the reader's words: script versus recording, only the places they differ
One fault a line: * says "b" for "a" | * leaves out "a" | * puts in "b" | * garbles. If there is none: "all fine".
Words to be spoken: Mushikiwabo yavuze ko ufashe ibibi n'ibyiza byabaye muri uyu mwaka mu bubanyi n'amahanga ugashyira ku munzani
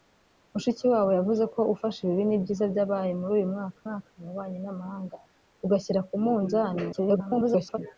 * puts in "mwaka"
* garbles